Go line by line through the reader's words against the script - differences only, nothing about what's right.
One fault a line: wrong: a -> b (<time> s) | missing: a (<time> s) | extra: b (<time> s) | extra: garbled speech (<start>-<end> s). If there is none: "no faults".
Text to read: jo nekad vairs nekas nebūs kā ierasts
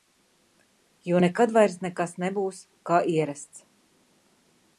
no faults